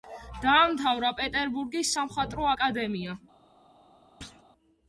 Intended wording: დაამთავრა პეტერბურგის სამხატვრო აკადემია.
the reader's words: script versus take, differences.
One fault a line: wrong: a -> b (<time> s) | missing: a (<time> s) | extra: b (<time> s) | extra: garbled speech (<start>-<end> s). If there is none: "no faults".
no faults